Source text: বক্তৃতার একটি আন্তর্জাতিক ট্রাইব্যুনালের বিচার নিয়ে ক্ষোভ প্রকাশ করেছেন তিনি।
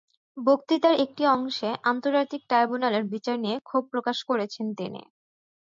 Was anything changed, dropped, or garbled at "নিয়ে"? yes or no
no